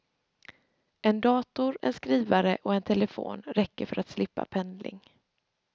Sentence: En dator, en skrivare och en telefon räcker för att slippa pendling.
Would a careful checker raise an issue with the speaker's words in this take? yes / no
no